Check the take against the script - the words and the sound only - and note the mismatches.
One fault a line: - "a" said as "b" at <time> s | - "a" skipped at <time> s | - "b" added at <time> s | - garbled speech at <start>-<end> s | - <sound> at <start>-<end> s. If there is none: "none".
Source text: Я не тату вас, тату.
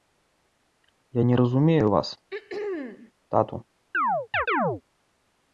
- "тату" said as "разумею" at 1.3 s
- throat clearing at 2.3-3.1 s
- chirp at 3.9-4.8 s